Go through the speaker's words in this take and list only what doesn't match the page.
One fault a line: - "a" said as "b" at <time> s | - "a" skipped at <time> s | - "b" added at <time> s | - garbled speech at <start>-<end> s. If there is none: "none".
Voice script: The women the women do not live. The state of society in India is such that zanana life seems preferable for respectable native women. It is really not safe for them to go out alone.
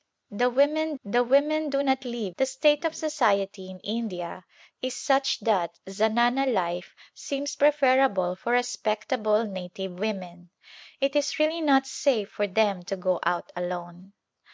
none